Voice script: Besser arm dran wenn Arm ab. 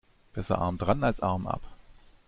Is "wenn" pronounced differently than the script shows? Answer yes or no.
yes